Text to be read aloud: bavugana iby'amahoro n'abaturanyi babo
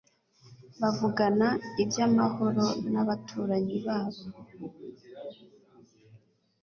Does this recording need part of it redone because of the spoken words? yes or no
no